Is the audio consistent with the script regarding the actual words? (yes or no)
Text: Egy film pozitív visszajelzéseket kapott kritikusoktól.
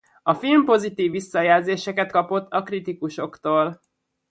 no